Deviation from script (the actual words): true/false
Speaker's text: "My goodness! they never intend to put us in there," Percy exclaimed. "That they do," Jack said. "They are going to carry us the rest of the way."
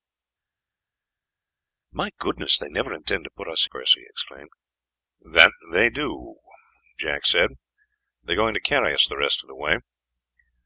true